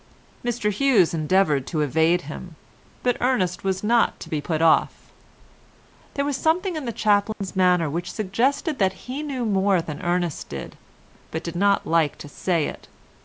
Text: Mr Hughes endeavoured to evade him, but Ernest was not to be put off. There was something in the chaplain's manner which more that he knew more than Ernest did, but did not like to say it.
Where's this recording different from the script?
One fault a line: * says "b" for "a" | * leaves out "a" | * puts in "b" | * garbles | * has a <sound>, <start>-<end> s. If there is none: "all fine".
* has a dropout, 7.3-7.4 s
* says "suggested" for "more"